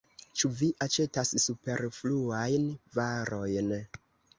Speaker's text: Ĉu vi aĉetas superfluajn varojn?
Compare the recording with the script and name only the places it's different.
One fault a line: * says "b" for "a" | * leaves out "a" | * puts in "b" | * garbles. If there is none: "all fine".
all fine